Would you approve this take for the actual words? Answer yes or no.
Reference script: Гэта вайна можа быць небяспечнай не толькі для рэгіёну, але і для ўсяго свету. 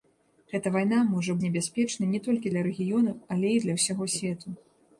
no